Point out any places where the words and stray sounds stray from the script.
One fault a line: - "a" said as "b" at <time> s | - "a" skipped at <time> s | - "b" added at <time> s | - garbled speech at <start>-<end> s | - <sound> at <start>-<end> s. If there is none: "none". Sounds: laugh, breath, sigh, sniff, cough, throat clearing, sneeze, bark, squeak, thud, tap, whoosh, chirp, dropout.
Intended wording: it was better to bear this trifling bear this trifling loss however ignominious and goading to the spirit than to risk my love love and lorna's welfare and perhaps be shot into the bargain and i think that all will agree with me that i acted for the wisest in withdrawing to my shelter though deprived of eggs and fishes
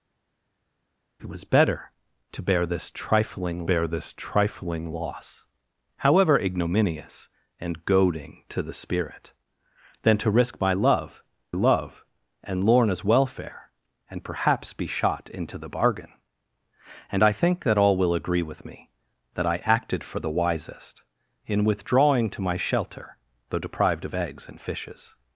none